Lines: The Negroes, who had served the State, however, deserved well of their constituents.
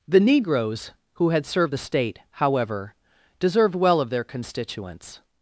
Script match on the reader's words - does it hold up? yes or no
yes